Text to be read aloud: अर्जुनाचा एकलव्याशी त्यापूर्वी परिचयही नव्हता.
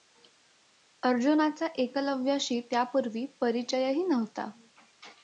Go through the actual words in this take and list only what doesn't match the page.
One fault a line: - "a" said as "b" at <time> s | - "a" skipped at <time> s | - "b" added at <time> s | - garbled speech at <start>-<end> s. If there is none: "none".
none